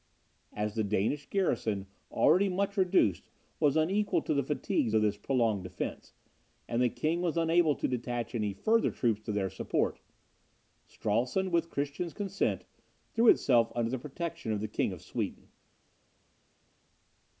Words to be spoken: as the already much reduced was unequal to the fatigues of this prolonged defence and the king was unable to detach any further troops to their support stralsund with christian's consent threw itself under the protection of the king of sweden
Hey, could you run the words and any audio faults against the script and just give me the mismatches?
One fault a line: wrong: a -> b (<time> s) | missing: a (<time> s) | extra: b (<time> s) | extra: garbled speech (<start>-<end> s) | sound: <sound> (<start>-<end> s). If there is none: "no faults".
extra: danish garrison (0.8 s)